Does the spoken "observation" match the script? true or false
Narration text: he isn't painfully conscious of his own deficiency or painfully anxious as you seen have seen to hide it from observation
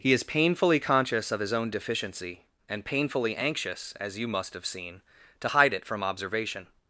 true